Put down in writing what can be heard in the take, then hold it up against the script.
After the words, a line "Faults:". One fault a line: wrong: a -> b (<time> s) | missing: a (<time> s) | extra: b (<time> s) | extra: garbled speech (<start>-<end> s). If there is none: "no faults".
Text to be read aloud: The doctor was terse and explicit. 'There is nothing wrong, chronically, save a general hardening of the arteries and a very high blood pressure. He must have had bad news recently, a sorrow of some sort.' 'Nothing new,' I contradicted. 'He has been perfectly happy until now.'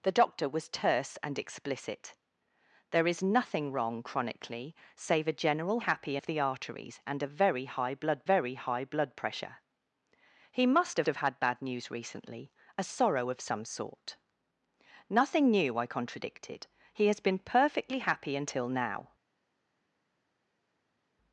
The doctor was terse and explicit. 'There is nothing wrong, chronically, save a general happy of the arteries and a very high blood very high blood pressure. He must have have had bad news recently, a sorrow of some sort.' 'Nothing new,' I contradicted. 'He has been perfectly happy until now.'
Faults:
wrong: hardening -> happy (5.8 s)
extra: very high blood (8.2 s)
extra: have (11.0 s)